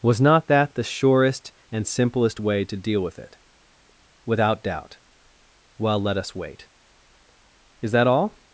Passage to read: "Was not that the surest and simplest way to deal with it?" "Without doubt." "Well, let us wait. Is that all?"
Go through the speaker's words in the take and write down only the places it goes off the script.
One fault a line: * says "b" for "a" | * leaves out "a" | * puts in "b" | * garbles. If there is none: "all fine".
all fine